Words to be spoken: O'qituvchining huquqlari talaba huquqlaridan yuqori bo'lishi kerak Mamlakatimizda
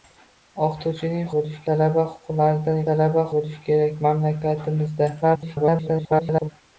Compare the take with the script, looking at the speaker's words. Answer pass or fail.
fail